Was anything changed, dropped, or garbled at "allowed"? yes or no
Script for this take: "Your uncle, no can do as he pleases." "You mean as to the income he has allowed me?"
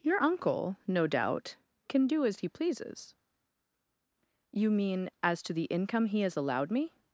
no